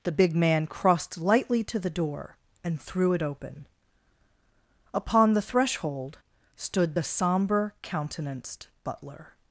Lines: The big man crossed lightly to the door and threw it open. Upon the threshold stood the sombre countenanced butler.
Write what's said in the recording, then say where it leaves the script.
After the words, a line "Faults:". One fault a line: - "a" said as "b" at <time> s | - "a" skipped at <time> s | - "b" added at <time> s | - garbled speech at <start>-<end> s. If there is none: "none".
The big man crossed lightly to the door and threw it open. Upon the threshold stood the sombre countenanced butler.
Faults:
none